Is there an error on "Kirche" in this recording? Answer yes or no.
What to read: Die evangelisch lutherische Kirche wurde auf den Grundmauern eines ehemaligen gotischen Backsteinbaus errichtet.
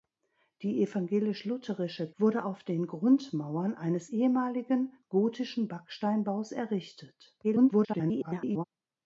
yes